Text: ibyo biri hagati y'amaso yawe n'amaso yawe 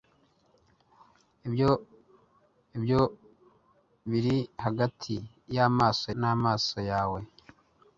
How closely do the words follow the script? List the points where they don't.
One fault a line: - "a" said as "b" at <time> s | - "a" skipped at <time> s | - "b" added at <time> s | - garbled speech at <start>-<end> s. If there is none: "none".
- "ibyo" added at 2.8 s
- "yawe" skipped at 6.1 s